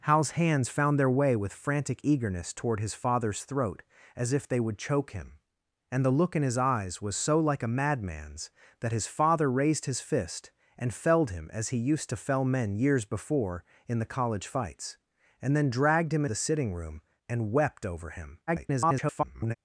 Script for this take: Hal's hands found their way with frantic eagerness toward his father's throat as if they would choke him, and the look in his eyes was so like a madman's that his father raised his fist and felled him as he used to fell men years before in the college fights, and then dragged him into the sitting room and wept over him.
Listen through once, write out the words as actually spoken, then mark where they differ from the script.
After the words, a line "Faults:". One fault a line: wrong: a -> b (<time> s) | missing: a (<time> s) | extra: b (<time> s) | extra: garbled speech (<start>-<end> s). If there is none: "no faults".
Hal's hands found their way with frantic eagerness toward his father's throat as if they would choke him, and the look in his eyes was so like a madman's that his father raised his fist and felled him as he used to fell men years before in the college fights, and then dragged him the sitting room and wept over him. [garbled]
Faults:
missing: into (16.2 s)
extra: garbled speech (18.5-19.6 s)